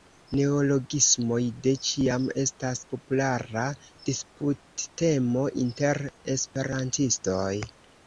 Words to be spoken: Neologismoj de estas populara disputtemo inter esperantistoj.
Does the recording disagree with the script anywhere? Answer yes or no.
yes